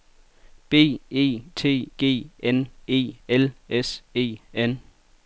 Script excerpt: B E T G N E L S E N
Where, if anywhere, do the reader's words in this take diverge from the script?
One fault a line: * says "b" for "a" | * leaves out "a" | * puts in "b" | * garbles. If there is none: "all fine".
all fine